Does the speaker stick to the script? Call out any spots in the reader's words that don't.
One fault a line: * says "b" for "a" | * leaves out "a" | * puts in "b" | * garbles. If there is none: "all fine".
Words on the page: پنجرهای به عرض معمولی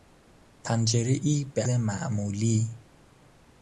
* leaves out "عرض"